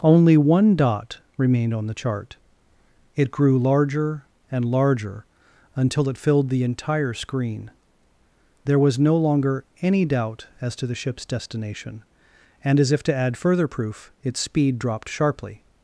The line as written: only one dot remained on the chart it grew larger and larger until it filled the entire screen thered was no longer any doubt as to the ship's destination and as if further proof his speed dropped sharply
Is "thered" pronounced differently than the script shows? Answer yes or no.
yes